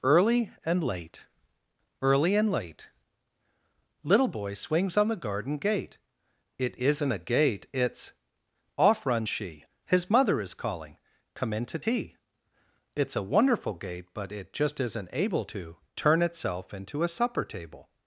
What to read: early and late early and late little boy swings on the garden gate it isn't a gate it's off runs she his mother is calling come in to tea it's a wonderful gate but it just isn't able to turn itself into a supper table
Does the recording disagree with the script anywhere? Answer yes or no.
no